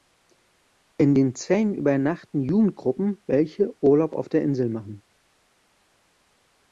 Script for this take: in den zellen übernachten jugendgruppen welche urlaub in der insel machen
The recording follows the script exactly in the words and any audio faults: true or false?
false